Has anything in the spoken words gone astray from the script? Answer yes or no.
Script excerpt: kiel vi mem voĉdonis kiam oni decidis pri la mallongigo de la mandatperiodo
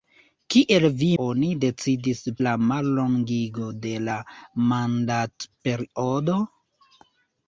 yes